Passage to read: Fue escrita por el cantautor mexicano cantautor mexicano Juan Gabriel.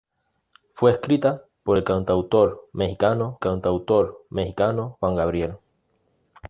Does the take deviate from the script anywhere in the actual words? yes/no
no